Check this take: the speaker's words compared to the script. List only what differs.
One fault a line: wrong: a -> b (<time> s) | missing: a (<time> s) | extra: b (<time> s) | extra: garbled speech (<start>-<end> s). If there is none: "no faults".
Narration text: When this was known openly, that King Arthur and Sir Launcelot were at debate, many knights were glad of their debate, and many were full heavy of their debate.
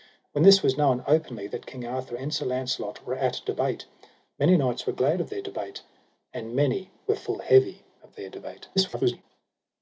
extra: garbled speech (8.8-9.2 s)